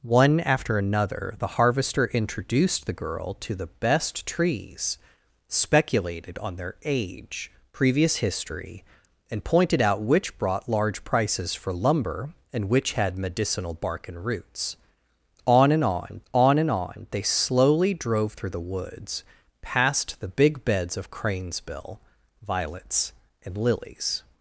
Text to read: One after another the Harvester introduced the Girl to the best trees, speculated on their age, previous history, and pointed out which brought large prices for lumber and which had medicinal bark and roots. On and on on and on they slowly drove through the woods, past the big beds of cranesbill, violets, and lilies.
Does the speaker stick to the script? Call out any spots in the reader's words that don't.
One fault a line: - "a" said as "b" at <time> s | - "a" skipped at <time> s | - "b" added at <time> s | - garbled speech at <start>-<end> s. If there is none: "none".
none